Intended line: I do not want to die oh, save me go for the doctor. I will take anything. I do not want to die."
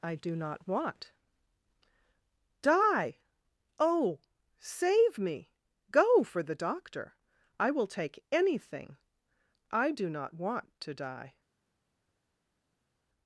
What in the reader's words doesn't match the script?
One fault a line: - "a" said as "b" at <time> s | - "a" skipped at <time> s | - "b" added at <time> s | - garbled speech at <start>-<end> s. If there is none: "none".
- "to" skipped at 1.1 s